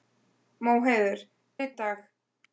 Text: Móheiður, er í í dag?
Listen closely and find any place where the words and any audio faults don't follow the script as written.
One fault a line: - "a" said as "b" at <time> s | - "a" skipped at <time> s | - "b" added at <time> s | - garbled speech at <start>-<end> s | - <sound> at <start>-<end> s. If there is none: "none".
none